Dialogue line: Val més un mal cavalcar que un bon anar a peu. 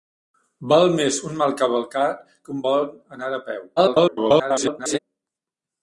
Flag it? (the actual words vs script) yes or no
yes